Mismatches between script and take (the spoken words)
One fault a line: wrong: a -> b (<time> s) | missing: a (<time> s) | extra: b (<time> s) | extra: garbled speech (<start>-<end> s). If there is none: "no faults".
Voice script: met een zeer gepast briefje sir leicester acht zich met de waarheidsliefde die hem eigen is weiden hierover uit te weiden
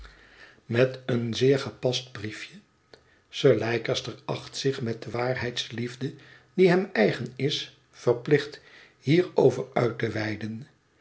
wrong: weiden -> verplicht (7.9 s)